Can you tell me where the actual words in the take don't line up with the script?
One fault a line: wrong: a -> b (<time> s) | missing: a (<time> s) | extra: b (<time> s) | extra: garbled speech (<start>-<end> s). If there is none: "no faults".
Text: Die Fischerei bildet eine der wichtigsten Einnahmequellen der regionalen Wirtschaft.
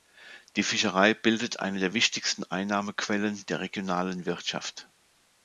no faults